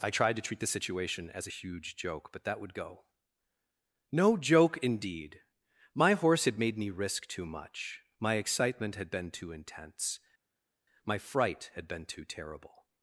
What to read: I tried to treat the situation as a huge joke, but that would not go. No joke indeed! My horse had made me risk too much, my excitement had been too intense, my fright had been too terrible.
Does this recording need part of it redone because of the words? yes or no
yes